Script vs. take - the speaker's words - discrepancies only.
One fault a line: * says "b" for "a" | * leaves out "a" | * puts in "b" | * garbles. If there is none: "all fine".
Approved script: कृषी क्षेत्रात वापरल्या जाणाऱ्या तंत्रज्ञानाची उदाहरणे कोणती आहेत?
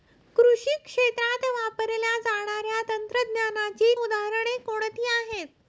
all fine